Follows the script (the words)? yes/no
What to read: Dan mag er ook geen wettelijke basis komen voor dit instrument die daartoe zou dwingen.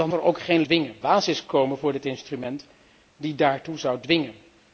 no